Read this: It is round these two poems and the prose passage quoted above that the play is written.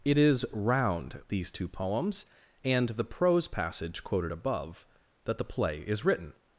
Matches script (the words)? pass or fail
pass